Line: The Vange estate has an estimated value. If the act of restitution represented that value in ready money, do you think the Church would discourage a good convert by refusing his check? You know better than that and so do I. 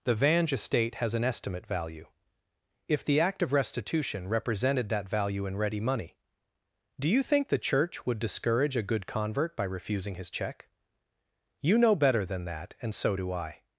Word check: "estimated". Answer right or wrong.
wrong